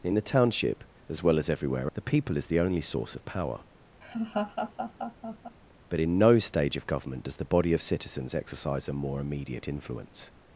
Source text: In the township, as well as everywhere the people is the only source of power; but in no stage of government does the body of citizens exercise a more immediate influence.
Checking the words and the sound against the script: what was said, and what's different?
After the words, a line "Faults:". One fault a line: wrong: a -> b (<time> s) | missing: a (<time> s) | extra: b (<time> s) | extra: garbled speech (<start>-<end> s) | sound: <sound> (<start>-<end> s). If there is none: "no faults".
In the township, as well as everywhere the people is the only source of power; but in no stage of government does the body of citizens exercise a more immediate influence.
Faults:
sound: laugh (4.0-5.6 s)